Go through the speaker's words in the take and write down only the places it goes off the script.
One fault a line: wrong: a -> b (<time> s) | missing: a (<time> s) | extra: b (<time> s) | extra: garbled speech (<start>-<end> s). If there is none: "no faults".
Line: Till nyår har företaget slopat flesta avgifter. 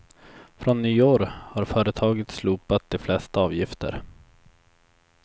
wrong: Till -> Från (0.6 s)
extra: de (2.9 s)